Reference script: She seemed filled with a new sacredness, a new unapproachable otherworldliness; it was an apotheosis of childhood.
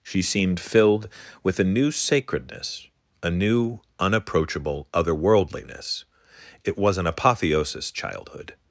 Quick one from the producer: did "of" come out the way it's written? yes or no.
no